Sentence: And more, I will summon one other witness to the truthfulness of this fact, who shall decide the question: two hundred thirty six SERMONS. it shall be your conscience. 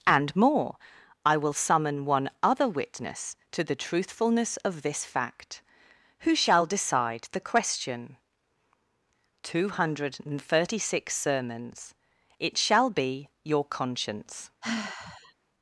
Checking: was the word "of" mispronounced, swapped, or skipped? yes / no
no